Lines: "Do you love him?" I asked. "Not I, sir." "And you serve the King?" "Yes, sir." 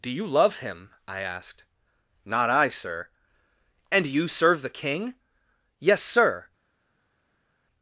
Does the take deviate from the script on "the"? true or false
false